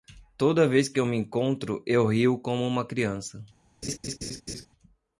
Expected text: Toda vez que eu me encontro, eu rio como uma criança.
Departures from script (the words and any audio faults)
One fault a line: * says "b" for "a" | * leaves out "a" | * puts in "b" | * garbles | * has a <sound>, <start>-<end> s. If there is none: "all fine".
* has a laugh, 3.8-4.7 s